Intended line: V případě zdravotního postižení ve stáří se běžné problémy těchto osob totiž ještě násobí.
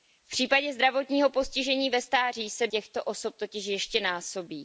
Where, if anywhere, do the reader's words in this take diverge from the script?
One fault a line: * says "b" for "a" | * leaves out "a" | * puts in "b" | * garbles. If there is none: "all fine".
* leaves out "běžné problémy"